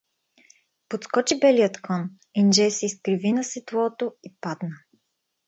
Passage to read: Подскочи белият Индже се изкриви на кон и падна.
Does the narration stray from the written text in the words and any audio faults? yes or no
yes